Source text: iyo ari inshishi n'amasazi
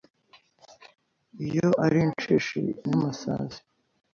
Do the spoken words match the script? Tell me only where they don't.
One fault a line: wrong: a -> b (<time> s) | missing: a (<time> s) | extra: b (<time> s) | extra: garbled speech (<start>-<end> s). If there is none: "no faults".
no faults